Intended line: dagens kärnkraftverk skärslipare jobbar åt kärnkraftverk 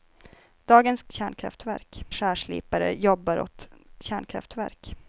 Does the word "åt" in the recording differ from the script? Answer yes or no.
no